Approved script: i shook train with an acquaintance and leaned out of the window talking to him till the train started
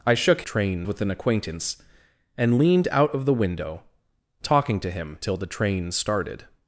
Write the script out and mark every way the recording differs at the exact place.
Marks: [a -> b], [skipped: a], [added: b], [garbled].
i shook train with an acquaintance and leaned out of the window talking to him till the train started